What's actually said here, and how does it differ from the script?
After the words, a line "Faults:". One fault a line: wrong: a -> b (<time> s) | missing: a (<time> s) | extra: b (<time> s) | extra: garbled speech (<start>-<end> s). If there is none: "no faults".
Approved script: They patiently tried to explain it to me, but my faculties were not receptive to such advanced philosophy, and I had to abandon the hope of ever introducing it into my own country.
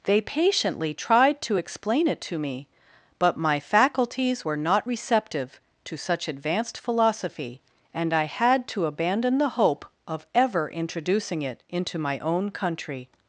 They patiently tried to explain it to me, but my faculties were not receptive to such advanced philosophy, and I had to abandon the hope of ever introducing it into my own country.
Faults:
no faults